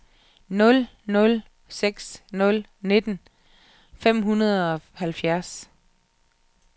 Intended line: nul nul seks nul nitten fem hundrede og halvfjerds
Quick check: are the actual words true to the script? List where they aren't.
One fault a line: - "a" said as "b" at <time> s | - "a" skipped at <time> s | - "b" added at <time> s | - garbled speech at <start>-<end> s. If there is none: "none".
none